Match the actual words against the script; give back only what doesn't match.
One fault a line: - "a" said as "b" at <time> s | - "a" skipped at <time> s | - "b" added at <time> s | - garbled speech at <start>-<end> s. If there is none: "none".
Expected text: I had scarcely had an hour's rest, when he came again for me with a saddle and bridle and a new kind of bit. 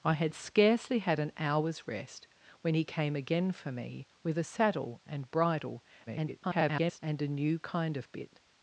- garbled speech at 6.1-7.0 s